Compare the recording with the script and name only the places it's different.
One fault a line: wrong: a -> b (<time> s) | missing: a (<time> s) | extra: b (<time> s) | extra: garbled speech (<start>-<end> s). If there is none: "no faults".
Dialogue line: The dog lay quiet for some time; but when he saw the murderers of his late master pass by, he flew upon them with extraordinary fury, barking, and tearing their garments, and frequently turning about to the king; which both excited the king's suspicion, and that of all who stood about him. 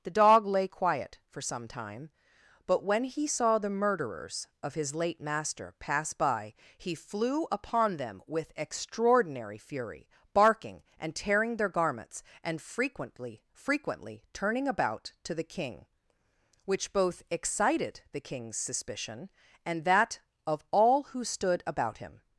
extra: frequently (13.5 s)